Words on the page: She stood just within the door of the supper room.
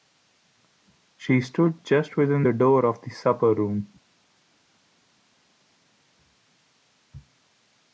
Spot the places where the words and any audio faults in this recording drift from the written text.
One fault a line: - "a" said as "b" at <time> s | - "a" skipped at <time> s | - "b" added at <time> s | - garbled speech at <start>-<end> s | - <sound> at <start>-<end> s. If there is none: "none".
none